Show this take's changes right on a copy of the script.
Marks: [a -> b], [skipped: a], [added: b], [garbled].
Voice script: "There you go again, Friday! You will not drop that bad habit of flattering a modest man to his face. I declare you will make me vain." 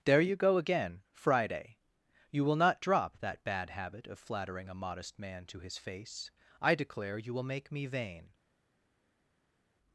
"There you go again, Friday! You will not drop that bad habit of flattering a modest man to his face. I declare you will make me vain."